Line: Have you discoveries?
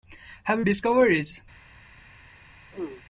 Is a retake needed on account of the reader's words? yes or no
no